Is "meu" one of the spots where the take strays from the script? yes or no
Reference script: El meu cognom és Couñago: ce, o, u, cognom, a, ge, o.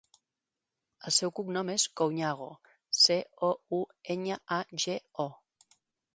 yes